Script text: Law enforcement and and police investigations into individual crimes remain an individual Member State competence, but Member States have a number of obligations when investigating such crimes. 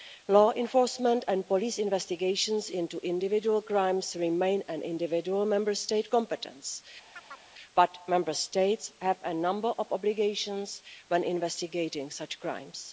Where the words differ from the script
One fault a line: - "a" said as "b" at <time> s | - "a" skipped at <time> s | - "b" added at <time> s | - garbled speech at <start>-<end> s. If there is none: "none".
- "and" skipped at 1.5 s